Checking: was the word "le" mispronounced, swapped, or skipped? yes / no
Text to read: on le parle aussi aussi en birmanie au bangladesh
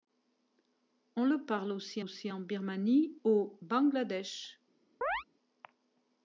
no